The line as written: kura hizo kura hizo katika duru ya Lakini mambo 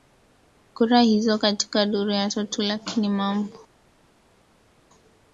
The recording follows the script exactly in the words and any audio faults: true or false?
false